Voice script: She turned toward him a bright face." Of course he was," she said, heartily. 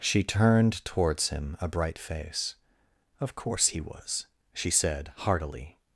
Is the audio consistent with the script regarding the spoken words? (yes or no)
no